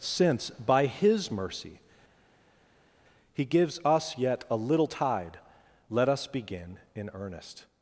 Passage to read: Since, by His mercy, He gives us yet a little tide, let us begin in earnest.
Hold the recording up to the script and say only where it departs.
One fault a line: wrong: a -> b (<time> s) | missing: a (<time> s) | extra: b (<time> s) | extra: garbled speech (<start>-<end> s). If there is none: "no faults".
no faults